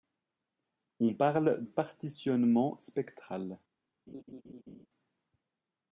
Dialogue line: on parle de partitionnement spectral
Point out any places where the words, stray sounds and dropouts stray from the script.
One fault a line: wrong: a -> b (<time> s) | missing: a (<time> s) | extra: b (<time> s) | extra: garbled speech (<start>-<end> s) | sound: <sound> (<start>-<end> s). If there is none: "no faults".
missing: de (1.7 s)
sound: laugh (4.1-4.9 s)